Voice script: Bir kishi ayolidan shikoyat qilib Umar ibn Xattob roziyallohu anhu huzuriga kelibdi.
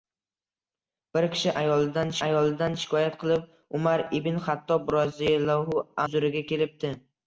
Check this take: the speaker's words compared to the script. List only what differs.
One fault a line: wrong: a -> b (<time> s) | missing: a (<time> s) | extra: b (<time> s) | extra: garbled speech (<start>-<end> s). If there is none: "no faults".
extra: ayolidan (2.3 s)
missing: anhu (5.9 s)